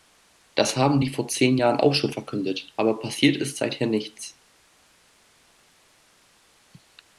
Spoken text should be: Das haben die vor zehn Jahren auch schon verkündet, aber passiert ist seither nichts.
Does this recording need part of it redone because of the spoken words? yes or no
no